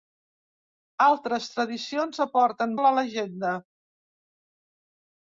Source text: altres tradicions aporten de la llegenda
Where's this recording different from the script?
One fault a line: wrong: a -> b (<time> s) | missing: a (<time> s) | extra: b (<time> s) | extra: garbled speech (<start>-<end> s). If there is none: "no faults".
no faults